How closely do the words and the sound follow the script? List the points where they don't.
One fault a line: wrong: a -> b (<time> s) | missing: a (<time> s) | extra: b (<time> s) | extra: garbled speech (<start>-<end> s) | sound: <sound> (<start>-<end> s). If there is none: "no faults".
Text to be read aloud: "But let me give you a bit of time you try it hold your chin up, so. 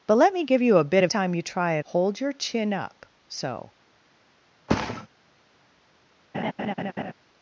sound: thud (4.7-5.1 s)
sound: laugh (6.3-7.1 s)